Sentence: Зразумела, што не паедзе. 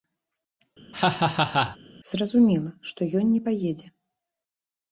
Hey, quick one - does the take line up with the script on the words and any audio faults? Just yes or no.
no